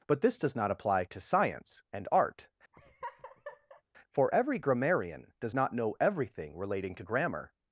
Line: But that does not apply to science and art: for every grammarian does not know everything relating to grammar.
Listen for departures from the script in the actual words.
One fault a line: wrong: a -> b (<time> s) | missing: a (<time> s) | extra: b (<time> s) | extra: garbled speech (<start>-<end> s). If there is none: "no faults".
wrong: that -> this (0.2 s)